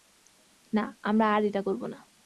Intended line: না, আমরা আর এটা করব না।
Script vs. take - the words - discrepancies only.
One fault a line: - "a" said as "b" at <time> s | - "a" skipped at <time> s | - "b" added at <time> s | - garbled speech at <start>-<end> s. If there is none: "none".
none